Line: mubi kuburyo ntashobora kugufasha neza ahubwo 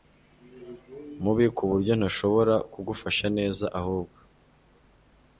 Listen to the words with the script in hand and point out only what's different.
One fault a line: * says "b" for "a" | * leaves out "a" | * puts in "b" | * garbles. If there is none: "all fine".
all fine